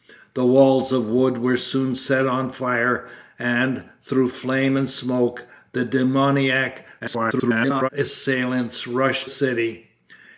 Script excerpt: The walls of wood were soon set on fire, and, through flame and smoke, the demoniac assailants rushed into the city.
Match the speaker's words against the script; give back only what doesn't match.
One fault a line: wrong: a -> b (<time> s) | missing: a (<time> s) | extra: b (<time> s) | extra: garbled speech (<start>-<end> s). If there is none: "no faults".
extra: garbled speech (7.0-7.9 s)
missing: into the (9.3 s)